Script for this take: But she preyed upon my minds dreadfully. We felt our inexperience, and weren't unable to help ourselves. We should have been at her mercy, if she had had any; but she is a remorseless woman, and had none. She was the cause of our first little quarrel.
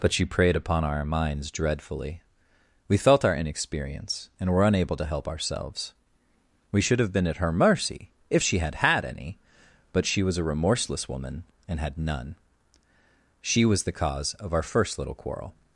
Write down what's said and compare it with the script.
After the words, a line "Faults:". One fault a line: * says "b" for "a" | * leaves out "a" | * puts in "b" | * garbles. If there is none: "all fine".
But she preyed upon our minds dreadfully. We felt our inexperience, and were unable to help ourselves. We should have been at her mercy, if she had had any; but she was a remorseless woman, and had none. She was the cause of our first little quarrel.
Faults:
* says "our" for "my"
* says "were" for "weren't"
* says "was" for "is"